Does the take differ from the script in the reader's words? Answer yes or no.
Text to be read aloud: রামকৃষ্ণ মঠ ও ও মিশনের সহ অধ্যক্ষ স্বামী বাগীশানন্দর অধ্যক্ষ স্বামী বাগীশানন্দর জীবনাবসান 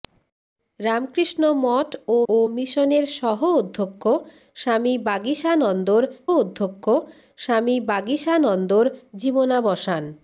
no